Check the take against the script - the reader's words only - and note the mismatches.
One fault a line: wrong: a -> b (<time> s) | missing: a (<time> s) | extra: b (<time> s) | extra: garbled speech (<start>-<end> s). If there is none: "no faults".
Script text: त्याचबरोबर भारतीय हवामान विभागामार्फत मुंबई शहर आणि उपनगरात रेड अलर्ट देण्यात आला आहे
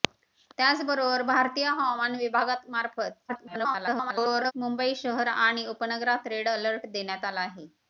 extra: garbled speech (3.3-4.5 s)